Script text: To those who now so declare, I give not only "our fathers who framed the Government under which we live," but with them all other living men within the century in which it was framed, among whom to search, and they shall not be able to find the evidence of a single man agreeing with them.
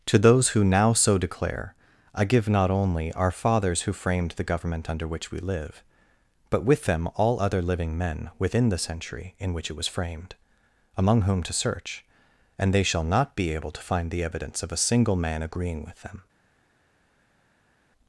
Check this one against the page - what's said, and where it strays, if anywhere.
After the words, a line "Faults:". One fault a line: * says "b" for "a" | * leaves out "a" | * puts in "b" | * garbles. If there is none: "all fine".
To those who now so declare, I give not only "our fathers who framed the Government under which we live," but with them all other living men within the century in which it was framed, among whom to search, and they shall not be able to find the evidence of a single man agreeing with them.
Faults:
all fine